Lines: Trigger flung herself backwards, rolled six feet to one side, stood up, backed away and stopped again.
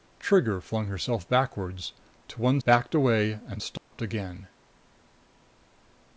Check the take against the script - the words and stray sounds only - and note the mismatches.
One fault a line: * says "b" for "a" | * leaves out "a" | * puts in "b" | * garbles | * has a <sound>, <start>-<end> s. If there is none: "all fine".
* leaves out "rolled six feet"
* leaves out "side stood up"
* has a dropout, 3.8-3.9 s